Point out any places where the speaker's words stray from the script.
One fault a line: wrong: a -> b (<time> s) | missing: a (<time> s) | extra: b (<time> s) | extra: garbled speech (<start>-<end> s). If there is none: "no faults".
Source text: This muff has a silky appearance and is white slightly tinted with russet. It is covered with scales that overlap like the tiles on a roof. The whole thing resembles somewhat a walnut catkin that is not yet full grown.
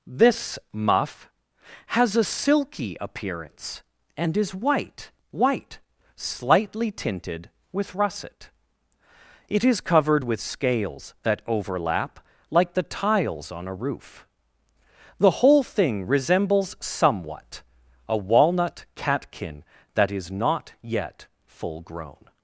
extra: white (5.3 s)